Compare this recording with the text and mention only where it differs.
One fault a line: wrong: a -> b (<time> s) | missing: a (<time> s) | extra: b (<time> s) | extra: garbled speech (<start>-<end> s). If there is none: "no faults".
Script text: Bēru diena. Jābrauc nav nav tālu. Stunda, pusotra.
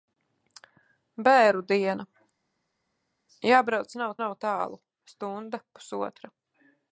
no faults